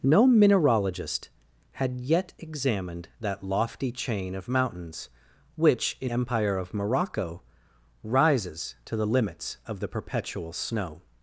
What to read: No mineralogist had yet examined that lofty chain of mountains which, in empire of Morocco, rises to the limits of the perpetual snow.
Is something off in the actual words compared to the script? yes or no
no